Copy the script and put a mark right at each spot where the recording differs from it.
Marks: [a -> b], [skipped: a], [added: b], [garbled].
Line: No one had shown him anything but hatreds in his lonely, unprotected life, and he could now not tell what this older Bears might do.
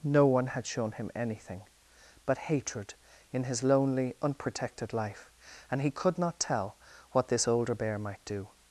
No one had shown him anything but [hatreds -> hatred] in his lonely, unprotected life, and he could [skipped: now] not tell what this older [Bears -> Bear] might do.